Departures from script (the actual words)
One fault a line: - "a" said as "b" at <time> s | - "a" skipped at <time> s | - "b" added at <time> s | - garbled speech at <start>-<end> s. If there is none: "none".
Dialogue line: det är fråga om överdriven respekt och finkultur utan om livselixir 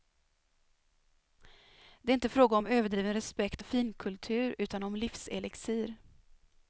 - "inte" added at 2.1 s